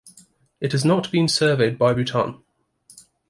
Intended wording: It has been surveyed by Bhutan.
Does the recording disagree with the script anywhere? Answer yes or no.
yes